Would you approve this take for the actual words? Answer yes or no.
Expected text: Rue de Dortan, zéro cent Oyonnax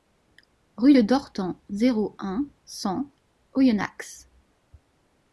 no